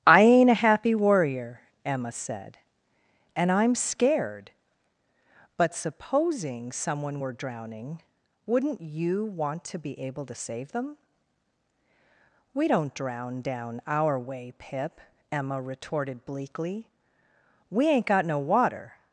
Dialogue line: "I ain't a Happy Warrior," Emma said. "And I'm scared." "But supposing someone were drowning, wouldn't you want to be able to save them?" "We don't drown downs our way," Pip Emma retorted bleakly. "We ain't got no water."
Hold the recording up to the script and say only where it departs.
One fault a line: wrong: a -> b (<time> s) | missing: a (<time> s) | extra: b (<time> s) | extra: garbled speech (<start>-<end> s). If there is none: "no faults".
wrong: downs -> down (13.4 s)